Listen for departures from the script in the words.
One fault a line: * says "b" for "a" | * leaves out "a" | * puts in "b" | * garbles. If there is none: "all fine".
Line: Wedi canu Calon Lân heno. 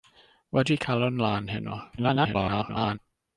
* leaves out "canu"
* garbles